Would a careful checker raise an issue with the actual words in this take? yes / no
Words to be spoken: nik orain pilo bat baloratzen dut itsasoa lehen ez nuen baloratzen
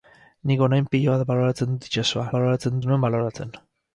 yes